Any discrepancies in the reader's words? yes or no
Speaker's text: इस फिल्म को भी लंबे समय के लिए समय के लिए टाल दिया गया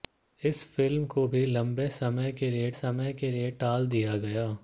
no